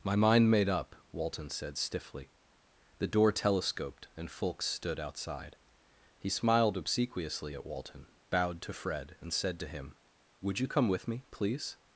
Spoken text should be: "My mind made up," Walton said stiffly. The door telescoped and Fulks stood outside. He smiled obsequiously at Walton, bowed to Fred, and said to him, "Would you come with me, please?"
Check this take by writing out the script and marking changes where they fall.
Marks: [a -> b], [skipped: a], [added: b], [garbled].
"My mind made up," Walton said stiffly. The door telescoped and Fulks stood outside. He smiled obsequiously at Walton, bowed to Fred, and said to him, "Would you come with me, please?"